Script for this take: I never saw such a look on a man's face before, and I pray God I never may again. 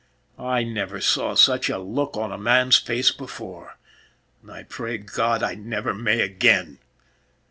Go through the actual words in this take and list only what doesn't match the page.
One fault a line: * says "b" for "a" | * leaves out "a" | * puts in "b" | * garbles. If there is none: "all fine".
all fine